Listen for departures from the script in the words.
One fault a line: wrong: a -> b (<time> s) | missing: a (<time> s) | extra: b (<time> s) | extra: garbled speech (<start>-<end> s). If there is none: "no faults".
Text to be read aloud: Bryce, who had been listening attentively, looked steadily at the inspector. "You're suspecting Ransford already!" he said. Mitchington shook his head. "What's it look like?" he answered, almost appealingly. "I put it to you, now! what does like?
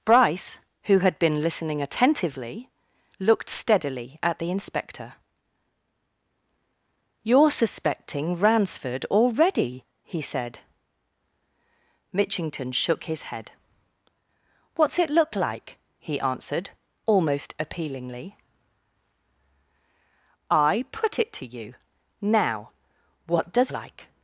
no faults